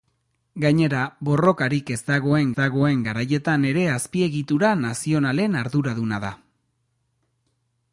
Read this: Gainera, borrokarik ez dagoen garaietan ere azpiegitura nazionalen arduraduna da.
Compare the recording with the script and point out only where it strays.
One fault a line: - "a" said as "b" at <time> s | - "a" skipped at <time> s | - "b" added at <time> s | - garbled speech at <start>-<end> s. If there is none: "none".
- "dagoen" added at 2.6 s